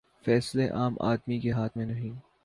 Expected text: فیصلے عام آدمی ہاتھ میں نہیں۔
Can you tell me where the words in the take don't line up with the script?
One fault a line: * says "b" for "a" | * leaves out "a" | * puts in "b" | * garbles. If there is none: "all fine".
* puts in "کے"